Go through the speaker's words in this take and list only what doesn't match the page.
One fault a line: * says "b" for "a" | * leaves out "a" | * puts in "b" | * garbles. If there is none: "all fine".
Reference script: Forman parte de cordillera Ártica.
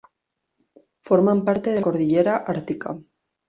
all fine